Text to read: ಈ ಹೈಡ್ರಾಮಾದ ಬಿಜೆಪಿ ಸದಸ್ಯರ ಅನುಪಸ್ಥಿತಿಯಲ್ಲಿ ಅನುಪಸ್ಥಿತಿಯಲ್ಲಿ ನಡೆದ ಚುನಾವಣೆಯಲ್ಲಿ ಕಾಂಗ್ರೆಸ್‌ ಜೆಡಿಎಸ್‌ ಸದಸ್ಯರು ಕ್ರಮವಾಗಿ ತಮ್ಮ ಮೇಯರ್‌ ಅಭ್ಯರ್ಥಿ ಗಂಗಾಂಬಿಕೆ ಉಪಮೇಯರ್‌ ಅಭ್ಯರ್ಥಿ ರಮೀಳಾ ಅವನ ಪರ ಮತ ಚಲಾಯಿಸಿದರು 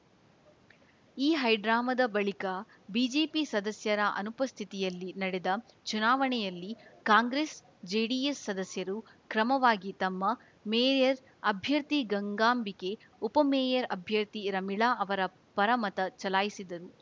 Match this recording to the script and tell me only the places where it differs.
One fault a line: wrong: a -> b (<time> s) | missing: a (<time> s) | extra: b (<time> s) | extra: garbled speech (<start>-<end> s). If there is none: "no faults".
extra: ಬಳಿಕ (2.1 s)
missing: ಅನುಪಸ್ಥಿತಿಯಲ್ಲಿ (5.1 s)
wrong: ಅವನ -> ಅವರ (15.0 s)